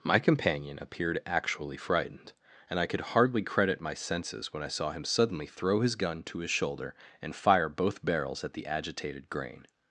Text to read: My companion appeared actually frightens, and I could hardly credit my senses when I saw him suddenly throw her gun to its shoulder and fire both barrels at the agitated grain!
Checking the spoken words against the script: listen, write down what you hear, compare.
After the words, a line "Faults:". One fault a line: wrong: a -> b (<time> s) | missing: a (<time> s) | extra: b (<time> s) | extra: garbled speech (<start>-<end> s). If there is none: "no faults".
My companion appeared actually frightened, and I could hardly credit my senses when I saw him suddenly throw his gun to his shoulder and fire both barrels at the agitated grain!
Faults:
wrong: frightens -> frightened (1.8 s)
wrong: her -> his (5.8 s)
wrong: its -> his (6.4 s)